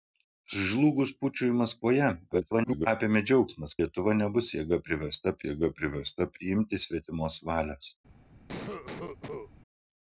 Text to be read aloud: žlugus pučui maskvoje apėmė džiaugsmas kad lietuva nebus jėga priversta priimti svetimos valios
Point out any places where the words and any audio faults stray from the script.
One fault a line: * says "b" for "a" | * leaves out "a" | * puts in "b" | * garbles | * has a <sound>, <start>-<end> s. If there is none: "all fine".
* garbles
* leaves out "kad"
* puts in "jėga priversta"
* has a cough, 8.5-9.5 s